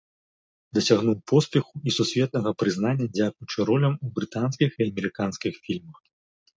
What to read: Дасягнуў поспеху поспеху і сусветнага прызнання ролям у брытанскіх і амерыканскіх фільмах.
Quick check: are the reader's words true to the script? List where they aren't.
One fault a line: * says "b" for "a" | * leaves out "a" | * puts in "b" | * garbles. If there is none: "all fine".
* leaves out "поспеху"
* puts in "дзякуючы"